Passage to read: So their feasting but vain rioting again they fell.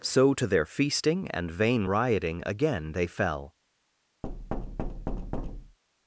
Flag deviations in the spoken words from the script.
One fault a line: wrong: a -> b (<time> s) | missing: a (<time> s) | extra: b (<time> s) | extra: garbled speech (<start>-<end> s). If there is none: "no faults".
extra: to (0.3 s)
wrong: but -> and (1.3 s)